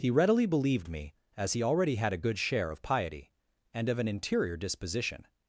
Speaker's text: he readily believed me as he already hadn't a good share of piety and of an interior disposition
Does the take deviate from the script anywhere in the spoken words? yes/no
yes